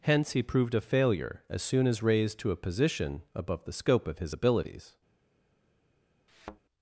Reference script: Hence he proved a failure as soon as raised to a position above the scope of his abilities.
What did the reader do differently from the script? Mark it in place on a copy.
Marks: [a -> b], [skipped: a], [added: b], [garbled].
Hence he proved a failure as soon as raised to a position above the scope of his abilities.